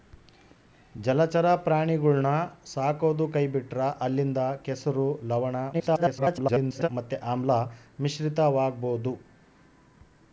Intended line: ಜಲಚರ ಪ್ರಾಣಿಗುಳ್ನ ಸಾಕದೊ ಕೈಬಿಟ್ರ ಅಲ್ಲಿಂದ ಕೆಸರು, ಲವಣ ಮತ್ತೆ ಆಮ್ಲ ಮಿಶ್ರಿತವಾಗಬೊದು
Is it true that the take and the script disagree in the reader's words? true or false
true